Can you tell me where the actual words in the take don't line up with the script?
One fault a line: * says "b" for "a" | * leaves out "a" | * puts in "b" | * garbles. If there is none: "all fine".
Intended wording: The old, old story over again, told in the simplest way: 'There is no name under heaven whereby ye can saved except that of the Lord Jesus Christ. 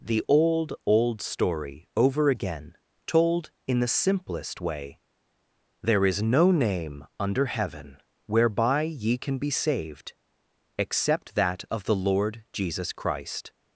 * puts in "be"